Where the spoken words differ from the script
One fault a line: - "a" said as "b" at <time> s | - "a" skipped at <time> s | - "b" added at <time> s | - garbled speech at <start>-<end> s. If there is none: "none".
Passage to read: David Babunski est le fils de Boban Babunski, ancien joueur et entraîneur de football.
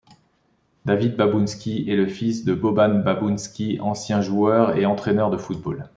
none